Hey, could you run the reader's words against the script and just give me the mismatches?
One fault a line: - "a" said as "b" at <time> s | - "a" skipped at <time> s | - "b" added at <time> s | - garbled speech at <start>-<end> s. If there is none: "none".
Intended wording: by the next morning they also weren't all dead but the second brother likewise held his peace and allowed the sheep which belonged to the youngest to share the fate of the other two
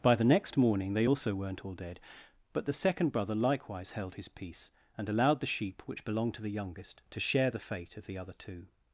none